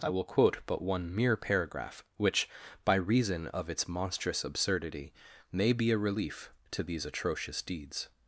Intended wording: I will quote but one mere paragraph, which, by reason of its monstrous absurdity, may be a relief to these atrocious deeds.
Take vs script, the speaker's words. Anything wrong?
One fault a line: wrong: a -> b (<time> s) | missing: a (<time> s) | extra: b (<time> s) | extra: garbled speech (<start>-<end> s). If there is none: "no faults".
no faults